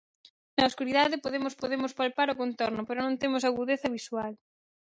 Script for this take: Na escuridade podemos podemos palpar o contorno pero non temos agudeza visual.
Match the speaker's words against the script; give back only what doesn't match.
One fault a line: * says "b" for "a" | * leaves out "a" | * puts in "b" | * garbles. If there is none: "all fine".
all fine